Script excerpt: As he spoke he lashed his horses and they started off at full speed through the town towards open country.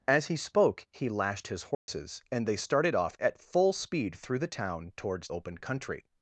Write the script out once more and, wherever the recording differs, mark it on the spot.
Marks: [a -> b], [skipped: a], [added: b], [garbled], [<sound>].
As he spoke he lashed his horses [dropout] and they started off at full speed through the town towards open country.